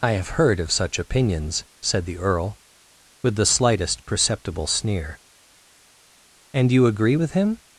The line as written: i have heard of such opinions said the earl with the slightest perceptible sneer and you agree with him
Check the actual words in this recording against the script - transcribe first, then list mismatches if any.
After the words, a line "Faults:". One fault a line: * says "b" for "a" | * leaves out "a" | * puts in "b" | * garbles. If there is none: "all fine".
i have heard of such opinions said the earl with the slightest perceptible sneer and you agree with him
Faults:
all fine